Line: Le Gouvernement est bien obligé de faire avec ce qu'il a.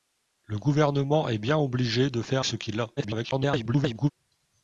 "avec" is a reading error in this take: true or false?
true